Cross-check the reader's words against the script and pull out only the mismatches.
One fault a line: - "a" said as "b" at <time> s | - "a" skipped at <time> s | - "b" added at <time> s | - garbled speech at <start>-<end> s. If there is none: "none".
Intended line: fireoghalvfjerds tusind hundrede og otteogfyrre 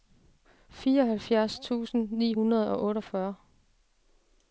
- "ni" added at 2.1 s